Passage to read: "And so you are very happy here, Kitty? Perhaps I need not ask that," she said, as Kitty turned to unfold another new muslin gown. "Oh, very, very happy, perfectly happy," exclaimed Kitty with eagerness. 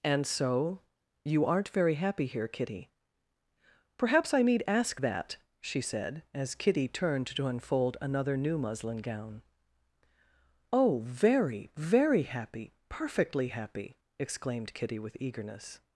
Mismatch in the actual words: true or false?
true